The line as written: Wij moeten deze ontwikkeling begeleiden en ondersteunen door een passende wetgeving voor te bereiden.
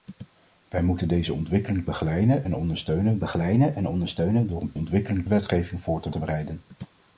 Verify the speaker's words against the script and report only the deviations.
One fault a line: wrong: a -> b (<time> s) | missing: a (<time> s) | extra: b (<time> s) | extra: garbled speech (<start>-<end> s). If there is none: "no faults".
extra: begeleiden en ondersteunen (3.2 s)
wrong: passende -> ontwikkeling (4.7 s)
extra: te (6.1 s)